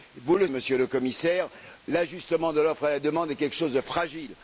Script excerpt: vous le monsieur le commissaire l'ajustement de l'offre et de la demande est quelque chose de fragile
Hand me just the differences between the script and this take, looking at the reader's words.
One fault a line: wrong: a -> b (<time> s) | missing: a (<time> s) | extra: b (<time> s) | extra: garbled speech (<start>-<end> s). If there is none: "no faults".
no faults